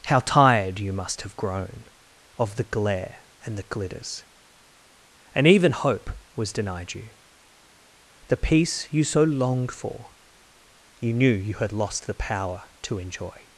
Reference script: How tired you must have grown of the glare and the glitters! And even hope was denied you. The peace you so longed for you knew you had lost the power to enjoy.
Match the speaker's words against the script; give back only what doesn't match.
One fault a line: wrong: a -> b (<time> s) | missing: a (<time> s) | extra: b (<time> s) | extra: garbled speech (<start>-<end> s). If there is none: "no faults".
no faults